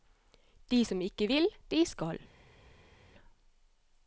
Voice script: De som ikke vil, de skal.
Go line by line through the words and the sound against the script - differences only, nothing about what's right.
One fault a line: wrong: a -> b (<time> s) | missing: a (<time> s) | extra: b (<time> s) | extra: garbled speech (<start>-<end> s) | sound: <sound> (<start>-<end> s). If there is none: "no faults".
no faults